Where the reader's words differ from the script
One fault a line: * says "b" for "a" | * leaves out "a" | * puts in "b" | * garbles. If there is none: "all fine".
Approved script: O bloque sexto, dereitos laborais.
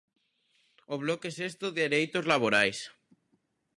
all fine